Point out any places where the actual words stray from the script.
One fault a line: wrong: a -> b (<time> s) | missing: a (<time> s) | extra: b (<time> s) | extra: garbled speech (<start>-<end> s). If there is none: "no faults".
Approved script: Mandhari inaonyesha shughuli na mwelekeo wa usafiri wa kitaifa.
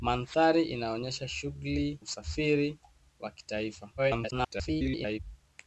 missing: na mwelekeo wa (2.0 s)
extra: garbled speech (4.0-5.2 s)